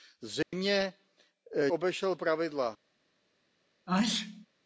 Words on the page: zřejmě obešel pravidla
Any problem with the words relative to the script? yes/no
no